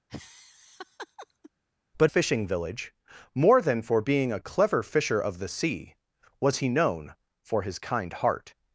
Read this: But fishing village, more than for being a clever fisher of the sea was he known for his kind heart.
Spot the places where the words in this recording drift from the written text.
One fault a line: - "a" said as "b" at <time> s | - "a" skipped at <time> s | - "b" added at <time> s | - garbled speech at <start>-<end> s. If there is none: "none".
none